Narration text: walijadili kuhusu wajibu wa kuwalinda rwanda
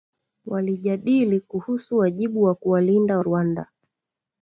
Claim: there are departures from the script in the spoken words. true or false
false